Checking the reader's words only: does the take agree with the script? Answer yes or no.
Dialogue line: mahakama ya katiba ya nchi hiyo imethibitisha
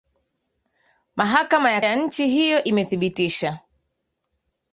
no